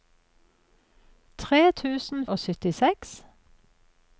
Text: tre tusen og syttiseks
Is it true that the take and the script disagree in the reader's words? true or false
false